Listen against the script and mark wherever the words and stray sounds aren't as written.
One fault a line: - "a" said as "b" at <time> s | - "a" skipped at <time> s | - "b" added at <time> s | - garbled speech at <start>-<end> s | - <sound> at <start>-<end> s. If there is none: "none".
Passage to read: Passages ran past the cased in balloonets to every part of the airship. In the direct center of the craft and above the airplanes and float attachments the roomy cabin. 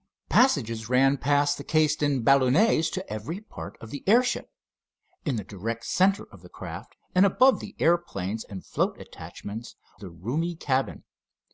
none